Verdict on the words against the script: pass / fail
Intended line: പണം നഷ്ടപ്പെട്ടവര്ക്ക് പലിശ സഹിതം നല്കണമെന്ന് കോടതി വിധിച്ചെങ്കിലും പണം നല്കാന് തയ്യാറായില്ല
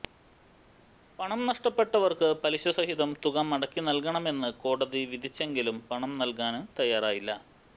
fail